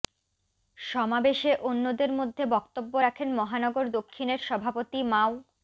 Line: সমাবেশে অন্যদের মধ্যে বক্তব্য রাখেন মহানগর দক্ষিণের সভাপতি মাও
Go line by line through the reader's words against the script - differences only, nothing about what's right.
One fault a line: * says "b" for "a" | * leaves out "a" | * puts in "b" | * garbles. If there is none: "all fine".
all fine